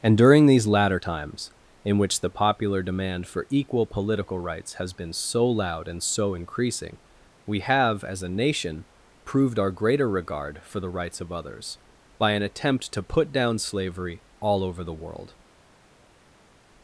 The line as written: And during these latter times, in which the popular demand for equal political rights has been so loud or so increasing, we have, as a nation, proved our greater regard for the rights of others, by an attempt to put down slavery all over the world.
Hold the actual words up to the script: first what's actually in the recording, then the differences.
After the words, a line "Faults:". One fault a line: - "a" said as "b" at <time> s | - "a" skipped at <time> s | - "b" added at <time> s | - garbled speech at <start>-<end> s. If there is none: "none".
And during these latter times, in which the popular demand for equal political rights has been so loud and so increasing, we have, as a nation, proved our greater regard for the rights of others, by an attempt to put down slavery all over the world.
Faults:
- "or" said as "and" at 5.9 s